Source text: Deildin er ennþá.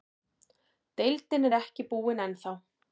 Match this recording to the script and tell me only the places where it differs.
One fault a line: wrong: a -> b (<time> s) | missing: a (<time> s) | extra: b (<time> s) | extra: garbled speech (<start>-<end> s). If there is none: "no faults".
extra: ekki búinn (1.6 s)